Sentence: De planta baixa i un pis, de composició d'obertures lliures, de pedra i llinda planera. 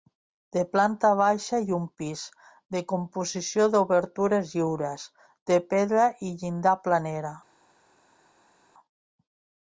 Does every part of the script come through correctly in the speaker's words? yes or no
yes